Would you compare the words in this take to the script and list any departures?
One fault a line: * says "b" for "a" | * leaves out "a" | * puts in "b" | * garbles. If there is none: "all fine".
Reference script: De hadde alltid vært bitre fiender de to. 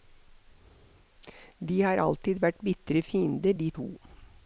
* says "har" for "hadde"